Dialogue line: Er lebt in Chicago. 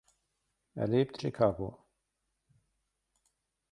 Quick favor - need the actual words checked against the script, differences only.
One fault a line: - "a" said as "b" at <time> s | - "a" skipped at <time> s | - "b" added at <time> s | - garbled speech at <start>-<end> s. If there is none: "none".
- "in" skipped at 1.2 s